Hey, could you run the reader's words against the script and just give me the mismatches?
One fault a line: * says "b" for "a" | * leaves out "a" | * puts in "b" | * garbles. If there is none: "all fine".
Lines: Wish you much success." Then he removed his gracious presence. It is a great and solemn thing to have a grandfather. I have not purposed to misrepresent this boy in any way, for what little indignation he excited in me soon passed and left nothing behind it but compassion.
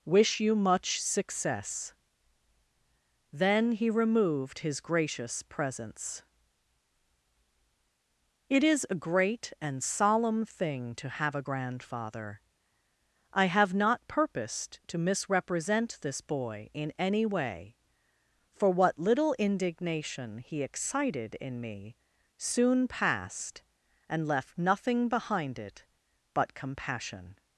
all fine